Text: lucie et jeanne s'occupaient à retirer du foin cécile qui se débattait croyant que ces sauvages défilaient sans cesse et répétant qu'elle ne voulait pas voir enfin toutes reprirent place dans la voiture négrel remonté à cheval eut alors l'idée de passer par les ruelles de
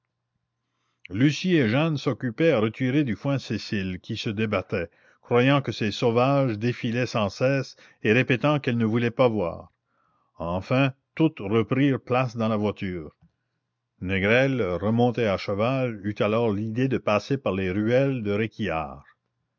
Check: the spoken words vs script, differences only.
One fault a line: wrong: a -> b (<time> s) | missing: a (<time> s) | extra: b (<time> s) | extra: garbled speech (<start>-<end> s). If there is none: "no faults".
no faults